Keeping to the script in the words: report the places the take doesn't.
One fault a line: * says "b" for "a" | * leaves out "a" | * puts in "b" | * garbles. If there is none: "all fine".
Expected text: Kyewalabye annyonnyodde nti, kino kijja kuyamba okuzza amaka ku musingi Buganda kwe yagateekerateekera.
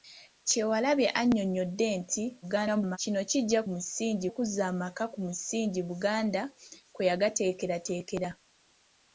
* garbles
* says "musingi" for "kuyamba"